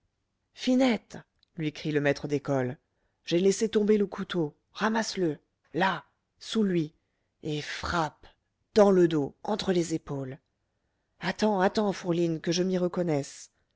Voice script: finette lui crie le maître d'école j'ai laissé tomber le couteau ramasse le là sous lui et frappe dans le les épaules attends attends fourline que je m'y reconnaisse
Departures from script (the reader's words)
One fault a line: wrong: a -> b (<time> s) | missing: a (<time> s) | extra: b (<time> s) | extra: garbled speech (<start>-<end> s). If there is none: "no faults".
extra: dos entre (9.1 s)